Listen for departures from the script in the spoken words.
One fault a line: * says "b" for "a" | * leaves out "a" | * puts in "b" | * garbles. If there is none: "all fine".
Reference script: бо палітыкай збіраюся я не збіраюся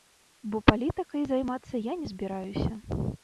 * says "займацца" for "збіраюся"